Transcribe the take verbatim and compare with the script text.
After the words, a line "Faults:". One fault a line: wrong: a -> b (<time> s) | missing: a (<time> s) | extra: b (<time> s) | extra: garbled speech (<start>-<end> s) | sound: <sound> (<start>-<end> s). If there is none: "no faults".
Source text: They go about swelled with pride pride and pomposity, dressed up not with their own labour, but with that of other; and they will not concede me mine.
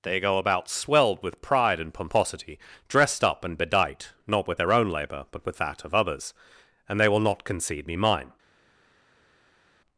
They go about swelled with pride and pomposity, dressed up and bedight, not with their own labour, but with that of others; and they will not concede me mine.
Faults:
missing: pride (1.8 s)
extra: and bedight (3.5 s)
wrong: other -> others (5.9 s)